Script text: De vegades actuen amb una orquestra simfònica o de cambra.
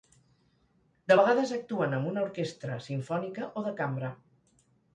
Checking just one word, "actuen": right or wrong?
right